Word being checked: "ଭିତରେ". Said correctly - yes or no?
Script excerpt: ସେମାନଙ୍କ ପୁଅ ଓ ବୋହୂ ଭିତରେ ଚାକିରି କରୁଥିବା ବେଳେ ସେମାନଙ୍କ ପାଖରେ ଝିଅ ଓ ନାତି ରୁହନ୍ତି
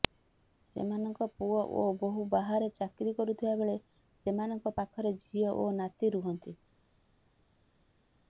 no